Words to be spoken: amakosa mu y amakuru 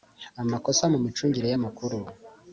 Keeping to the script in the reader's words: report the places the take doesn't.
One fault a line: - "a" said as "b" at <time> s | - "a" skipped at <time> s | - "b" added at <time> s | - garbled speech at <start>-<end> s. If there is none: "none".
- "micungire" added at 1.1 s